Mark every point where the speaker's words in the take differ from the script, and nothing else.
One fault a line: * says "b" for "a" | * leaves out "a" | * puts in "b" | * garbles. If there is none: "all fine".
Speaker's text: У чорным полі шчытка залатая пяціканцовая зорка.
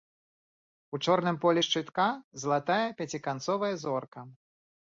all fine